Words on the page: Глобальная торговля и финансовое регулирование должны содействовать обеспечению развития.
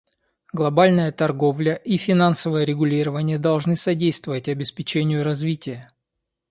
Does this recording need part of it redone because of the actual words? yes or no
no